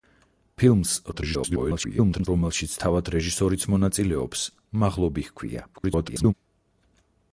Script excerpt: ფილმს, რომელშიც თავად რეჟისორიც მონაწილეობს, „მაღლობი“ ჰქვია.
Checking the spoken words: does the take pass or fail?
fail